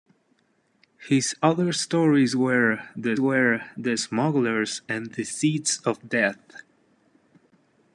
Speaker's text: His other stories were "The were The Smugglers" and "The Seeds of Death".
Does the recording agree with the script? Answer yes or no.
yes